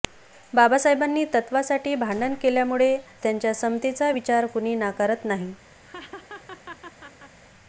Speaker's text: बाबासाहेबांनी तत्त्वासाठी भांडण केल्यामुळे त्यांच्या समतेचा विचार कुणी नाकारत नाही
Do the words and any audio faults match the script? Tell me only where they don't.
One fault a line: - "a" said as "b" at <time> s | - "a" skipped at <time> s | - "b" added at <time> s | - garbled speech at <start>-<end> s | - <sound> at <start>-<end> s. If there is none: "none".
- laugh at 5.8-7.4 s